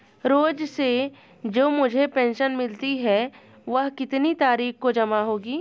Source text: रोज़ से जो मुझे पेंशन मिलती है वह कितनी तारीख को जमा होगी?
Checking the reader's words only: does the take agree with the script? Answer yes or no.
yes